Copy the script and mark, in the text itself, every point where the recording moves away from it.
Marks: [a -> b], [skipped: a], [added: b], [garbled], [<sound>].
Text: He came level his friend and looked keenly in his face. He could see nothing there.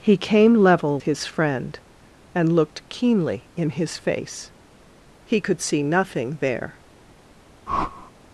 He came level his friend and looked keenly in his face. He could see nothing there. [whoosh]